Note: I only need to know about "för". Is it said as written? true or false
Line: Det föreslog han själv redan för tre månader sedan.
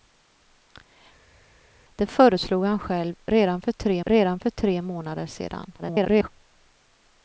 true